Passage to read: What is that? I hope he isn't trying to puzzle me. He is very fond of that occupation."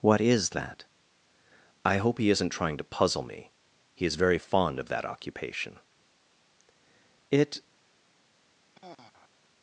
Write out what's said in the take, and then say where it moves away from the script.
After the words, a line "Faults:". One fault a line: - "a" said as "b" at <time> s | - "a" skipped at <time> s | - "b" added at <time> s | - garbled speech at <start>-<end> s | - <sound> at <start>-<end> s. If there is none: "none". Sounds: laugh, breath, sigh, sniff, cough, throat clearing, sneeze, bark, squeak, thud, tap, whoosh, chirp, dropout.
What is that? I hope he isn't trying to puzzle me. He is very fond of that occupation." "It
Faults:
- "It" added at 7.3 s
- sigh at 8.7-9.3 s